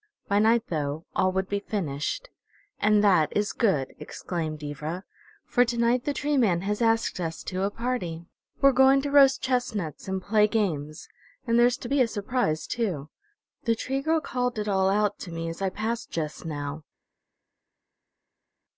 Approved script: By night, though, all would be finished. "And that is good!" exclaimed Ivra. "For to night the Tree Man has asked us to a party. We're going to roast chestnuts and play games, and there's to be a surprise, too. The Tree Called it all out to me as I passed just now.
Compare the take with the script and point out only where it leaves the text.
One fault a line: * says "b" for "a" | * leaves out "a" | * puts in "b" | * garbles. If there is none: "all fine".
* puts in "Girl"